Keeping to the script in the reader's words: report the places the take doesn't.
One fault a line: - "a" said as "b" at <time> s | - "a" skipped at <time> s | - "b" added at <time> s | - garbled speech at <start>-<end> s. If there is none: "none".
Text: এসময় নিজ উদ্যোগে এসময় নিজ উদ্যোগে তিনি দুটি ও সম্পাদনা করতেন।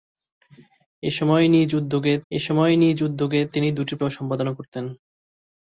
none